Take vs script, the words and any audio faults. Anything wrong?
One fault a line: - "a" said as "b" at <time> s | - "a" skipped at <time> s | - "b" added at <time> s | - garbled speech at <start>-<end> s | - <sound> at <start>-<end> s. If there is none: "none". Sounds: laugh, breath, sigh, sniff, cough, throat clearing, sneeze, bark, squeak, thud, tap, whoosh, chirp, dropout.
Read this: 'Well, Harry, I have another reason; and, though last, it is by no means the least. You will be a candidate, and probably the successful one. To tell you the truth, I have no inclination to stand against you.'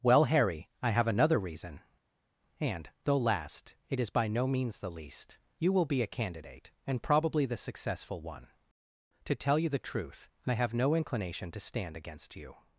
none